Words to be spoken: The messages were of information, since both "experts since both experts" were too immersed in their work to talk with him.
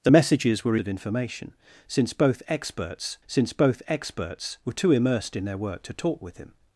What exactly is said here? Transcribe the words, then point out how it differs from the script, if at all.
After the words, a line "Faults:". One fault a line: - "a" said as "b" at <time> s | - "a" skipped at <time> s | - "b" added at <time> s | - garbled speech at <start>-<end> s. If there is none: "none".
The messages were of information, since both "experts since both experts" were too immersed in their work to talk with him.
Faults:
none